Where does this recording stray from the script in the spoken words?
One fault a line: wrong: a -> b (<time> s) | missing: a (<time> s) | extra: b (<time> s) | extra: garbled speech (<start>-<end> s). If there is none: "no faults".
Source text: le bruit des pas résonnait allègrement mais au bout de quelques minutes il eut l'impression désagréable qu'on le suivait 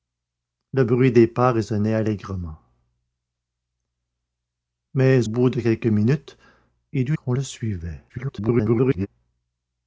missing: au (5.3 s)
missing: l'impression désagréable (7.2 s)
extra: garbled speech (8.1-9.1 s)